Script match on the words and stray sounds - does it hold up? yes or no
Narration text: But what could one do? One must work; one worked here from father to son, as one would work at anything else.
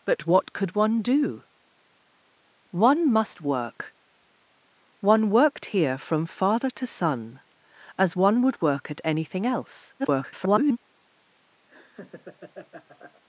no